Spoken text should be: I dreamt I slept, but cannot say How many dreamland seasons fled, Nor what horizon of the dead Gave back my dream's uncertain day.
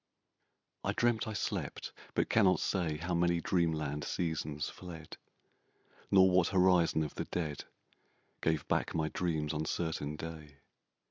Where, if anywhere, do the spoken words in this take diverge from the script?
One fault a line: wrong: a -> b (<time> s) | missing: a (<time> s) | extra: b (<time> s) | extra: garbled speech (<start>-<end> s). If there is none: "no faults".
no faults